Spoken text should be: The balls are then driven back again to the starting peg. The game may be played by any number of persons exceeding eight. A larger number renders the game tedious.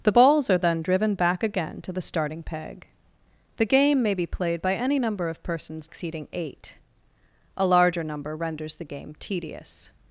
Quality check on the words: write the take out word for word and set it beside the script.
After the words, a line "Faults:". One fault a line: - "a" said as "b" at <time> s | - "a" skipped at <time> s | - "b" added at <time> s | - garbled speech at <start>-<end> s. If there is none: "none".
The balls are then driven back again to the starting peg. The game may be played by any number of persons exceeding eight. A larger number renders the game tedious.
Faults:
none